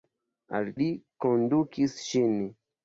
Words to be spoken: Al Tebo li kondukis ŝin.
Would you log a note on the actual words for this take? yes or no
yes